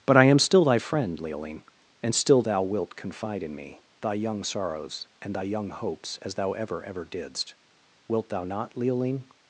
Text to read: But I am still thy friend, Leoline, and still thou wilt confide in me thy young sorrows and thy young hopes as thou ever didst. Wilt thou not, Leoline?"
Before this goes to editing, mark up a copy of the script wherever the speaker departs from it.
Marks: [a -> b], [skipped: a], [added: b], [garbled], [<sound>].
But I am still thy friend, Leoline, and still thou wilt confide in me thy young sorrows and thy young hopes as thou ever [added: ever] didst. Wilt thou not, Leoline?"